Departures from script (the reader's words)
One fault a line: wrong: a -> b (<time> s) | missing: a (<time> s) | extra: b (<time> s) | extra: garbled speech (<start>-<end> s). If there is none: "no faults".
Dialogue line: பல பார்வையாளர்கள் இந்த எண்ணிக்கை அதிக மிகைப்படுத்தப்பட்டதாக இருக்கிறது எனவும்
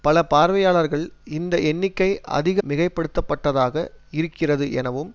no faults